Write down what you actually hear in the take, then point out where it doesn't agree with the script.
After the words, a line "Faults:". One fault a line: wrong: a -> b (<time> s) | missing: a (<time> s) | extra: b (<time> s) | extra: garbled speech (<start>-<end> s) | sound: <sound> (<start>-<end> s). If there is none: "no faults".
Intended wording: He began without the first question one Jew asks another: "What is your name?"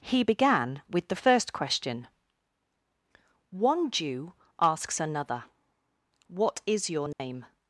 He began with the first question one Jew asks another: "What is your name?"
Faults:
wrong: without -> with (0.9 s)
sound: dropout (7.1-7.2 s)